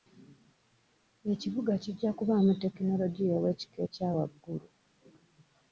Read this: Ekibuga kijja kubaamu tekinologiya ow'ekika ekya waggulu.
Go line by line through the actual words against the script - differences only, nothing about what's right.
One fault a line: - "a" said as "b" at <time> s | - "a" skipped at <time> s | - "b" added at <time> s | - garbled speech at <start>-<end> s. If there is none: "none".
none